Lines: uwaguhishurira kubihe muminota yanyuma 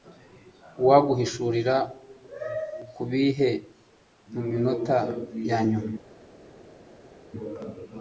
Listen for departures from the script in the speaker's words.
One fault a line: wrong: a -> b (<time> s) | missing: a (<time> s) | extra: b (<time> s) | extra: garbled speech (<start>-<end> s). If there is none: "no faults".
no faults